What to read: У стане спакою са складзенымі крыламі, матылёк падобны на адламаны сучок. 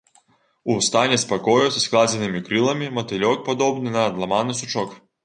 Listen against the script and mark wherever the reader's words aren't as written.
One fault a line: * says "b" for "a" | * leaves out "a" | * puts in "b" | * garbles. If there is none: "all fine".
all fine